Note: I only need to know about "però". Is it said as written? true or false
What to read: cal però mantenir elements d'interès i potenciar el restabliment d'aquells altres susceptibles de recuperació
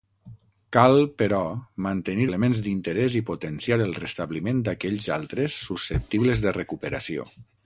true